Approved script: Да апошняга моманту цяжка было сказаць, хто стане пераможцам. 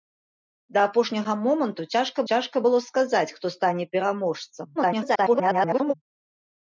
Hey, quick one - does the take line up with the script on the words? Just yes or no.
no